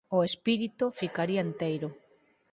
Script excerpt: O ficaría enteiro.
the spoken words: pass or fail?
fail